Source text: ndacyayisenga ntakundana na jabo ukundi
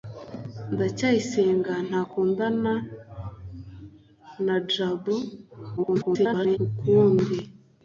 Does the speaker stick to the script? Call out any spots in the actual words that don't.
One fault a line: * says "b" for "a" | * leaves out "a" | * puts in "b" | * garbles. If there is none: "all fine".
* garbles